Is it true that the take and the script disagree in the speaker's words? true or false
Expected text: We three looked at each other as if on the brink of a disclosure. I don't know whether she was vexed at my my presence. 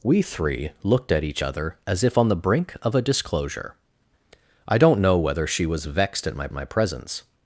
false